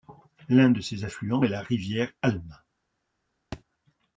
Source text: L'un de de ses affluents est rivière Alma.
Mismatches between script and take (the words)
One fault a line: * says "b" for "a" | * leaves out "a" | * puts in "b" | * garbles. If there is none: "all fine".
* leaves out "de"
* puts in "la"